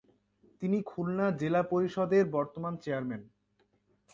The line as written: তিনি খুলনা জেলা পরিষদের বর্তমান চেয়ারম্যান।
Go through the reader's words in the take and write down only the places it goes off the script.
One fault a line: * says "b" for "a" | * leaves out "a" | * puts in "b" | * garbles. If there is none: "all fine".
all fine